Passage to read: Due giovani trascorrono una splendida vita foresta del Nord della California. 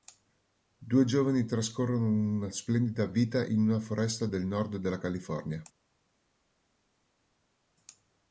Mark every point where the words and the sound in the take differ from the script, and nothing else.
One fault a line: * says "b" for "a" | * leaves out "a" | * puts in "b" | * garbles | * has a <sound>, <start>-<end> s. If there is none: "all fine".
* puts in "in una"